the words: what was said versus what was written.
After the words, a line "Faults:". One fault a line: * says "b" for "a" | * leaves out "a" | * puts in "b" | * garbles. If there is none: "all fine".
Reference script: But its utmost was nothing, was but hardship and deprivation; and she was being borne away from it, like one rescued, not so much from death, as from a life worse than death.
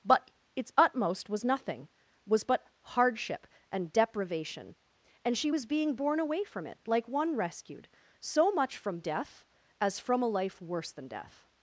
But its utmost was nothing, was but hardship and deprivation; and she was being borne away from it, like one rescued, so much from death, as from a life worse than death.
Faults:
* leaves out "not"